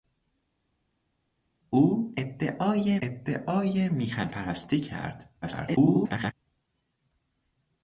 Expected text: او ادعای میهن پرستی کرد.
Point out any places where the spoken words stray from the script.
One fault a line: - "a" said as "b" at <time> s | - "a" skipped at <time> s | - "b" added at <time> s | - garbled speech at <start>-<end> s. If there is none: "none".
- "ادعای" added at 3.0 s
- garbled speech at 5.4-6.3 s